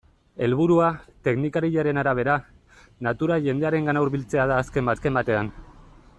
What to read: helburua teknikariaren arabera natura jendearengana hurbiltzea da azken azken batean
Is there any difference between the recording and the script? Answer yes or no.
no